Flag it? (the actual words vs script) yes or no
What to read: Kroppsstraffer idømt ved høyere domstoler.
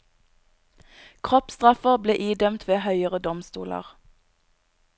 yes